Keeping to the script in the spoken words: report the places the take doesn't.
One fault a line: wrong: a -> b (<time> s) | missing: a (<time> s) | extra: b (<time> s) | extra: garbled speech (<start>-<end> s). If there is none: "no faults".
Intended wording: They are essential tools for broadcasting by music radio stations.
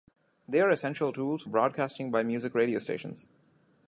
missing: for (1.4 s)